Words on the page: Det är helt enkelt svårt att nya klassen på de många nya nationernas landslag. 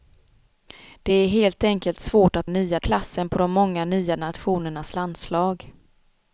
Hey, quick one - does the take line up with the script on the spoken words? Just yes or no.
yes